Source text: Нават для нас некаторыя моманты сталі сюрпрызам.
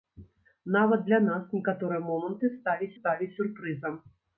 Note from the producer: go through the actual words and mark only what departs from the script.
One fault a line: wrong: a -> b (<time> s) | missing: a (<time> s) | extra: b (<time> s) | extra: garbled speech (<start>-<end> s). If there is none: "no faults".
extra: сталі (3.0 s)